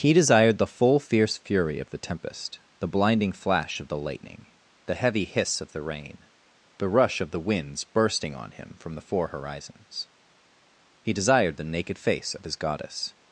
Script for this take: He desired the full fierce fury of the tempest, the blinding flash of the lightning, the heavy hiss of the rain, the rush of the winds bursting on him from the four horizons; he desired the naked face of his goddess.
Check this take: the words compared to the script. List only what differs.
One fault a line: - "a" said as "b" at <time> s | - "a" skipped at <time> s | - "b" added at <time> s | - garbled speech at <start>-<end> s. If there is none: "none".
none